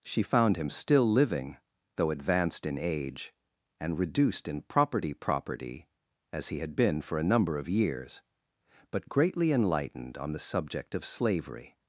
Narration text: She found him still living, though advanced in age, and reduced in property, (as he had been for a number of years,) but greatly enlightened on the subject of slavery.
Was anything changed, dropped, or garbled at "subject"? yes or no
no